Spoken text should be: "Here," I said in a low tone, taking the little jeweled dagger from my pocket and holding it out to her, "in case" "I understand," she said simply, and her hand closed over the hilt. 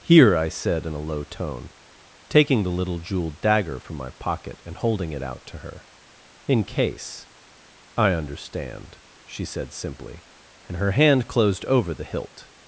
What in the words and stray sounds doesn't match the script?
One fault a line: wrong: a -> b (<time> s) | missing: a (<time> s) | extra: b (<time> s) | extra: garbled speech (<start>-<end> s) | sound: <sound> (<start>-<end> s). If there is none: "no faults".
no faults